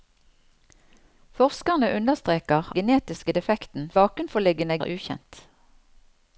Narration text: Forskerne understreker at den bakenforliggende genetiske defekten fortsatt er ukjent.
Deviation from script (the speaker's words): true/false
true